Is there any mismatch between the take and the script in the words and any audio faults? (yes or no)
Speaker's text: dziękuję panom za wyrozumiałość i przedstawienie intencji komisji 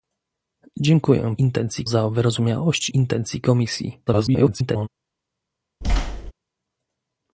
yes